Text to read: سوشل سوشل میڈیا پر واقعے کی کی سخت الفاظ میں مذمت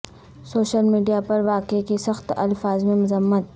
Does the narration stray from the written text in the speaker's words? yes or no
yes